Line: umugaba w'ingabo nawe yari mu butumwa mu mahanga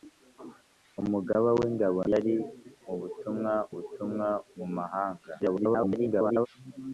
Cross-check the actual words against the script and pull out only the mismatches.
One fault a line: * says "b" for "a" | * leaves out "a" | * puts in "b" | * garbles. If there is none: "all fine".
* leaves out "nawe"
* puts in "butumwa"
* garbles